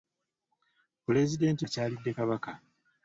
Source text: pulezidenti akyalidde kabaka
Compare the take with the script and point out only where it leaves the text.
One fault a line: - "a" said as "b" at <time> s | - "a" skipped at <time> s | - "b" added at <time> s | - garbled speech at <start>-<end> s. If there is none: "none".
none